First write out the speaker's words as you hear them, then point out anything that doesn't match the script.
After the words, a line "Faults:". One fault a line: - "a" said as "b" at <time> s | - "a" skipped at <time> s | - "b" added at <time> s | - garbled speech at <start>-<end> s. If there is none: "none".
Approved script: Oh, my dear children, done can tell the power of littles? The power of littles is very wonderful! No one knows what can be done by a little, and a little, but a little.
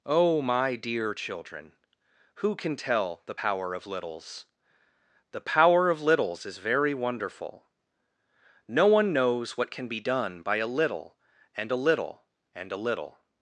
Oh, my dear children, who can tell the power of littles? The power of littles is very wonderful! No one knows what can be done by a little, and a little, and a little.
Faults:
- "done" said as "who" at 2.4 s
- "but" said as "and" at 12.5 s